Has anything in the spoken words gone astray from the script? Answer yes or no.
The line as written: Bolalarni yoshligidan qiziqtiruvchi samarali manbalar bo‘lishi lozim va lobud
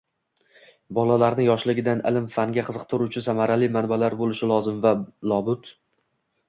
yes